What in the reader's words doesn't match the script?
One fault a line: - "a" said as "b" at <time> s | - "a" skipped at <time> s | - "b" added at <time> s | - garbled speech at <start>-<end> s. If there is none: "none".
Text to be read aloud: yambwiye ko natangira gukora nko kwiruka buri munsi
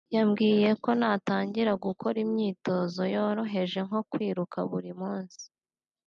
- "imyitozo yoroheje" added at 2.2 s